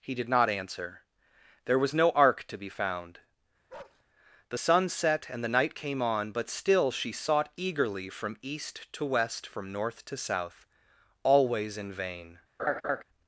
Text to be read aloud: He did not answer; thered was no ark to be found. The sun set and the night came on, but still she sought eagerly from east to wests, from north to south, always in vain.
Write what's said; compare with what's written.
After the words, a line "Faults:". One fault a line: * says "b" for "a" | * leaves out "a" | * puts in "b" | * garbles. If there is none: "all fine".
He did not answer; there was no ark to be found. The sun set and the night came on, but still she sought eagerly from east to west, from north to south, always in vain.
Faults:
* says "there" for "thered"
* says "west" for "wests"